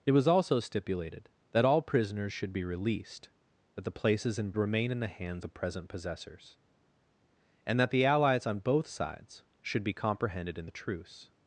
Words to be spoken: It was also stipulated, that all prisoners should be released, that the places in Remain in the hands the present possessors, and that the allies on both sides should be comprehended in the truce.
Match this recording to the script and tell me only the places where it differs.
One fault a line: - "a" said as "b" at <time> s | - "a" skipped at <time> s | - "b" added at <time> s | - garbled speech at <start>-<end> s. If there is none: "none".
none